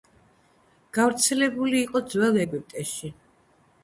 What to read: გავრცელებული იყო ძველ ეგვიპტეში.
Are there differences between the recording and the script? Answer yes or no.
no